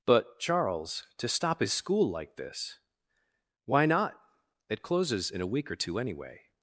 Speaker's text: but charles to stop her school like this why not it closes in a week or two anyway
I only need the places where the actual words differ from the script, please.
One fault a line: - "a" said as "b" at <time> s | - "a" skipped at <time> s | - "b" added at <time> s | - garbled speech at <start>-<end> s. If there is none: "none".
- "her" said as "his" at 1.6 s